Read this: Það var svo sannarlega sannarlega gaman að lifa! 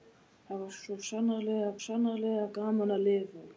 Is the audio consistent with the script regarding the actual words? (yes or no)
yes